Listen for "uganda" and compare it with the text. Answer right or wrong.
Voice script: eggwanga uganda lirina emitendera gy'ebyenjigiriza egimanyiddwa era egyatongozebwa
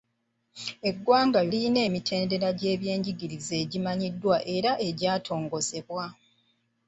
wrong